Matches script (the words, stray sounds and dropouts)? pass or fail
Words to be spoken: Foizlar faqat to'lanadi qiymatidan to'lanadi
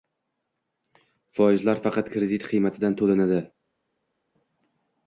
fail